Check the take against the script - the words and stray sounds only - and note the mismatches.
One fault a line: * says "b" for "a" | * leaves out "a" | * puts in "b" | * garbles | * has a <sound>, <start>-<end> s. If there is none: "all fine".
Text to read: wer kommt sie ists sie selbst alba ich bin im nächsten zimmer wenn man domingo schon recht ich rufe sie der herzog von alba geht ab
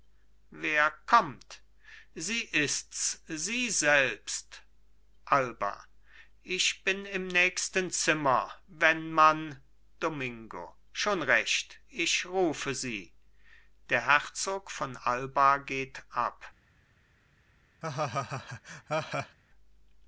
* has a laugh, 17.8-19.4 s